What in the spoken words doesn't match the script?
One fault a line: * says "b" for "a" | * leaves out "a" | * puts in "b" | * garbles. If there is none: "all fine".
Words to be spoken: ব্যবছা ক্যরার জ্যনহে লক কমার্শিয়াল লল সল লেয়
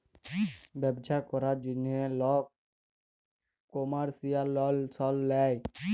all fine